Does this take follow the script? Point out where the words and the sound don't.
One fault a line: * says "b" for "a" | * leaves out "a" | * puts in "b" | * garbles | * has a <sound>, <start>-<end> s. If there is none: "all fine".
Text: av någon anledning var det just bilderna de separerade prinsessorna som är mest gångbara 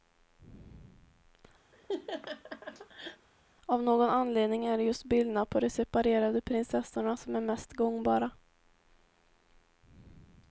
* has a laugh, 1.7-3.3 s
* says "är" for "var"
* puts in "på"